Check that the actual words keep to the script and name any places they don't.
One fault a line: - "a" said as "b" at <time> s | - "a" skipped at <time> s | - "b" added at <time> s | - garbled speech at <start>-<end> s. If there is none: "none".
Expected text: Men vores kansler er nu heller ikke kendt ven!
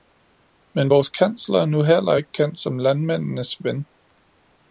- "som landmændenes" added at 2.6 s